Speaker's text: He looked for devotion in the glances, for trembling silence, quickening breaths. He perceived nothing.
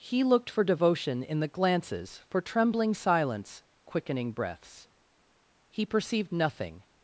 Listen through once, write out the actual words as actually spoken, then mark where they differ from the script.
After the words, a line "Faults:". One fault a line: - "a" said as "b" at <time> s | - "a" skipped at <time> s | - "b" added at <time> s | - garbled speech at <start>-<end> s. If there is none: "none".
He looked for devotion in the glances, for trembling silence, quickening breaths. He perceived nothing.
Faults:
none